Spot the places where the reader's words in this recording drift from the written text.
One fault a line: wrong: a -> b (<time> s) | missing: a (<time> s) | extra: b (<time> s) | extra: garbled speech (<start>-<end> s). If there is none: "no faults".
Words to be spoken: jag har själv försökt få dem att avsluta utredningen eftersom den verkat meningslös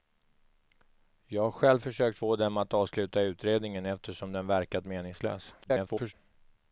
extra: garbled speech (5.6-6.1 s)